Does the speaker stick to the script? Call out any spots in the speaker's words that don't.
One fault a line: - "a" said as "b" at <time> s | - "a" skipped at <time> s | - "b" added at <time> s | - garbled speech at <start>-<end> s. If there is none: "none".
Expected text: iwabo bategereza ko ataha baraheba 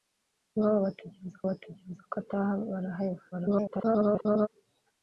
- "bategereza" added at 1.5 s
- garbled speech at 3.3-4.5 s